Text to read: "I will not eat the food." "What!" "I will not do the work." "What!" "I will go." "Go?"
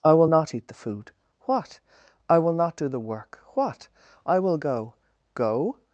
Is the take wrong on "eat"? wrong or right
right